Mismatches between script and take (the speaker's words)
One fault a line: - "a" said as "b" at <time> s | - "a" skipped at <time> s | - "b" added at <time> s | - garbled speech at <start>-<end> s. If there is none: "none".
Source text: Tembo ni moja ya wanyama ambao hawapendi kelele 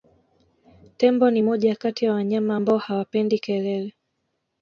- "kati" added at 1.8 s